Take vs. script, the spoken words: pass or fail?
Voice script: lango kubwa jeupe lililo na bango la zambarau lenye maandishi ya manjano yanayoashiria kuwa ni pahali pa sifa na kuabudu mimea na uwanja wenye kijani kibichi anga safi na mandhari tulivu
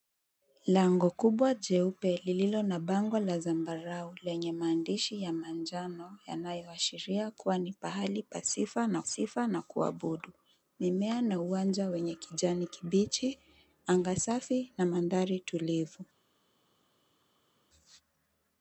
fail